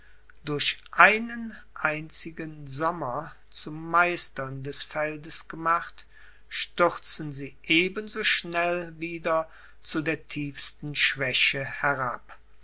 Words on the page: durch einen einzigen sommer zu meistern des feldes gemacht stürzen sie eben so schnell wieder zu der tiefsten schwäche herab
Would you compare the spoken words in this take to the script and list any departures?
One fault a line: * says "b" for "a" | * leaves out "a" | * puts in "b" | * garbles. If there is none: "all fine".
all fine